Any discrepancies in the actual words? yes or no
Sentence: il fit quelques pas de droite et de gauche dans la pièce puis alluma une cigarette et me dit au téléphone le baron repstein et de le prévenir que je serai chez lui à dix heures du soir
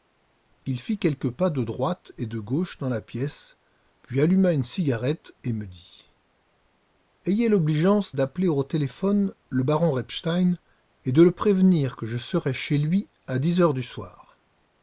yes